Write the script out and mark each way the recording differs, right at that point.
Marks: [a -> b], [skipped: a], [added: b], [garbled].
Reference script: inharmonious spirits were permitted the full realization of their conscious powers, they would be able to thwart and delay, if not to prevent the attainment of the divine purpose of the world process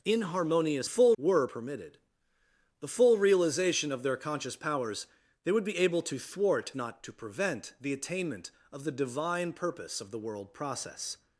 inharmonious [spirits -> full] were permitted the full realization of their conscious powers, they would be able to thwart [skipped: and delay, if] not to prevent the attainment of the divine purpose of the world process